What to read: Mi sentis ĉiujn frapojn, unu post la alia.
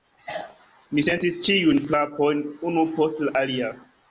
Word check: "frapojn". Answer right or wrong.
right